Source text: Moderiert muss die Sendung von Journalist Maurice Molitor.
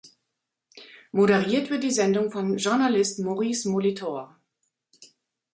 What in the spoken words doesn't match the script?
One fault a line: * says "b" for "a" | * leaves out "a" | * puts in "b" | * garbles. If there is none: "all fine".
* says "wird" for "muss"